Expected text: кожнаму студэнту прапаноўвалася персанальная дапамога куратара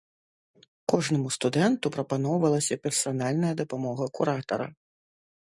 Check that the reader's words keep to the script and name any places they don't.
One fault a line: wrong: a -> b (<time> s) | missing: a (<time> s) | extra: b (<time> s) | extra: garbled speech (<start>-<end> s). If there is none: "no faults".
no faults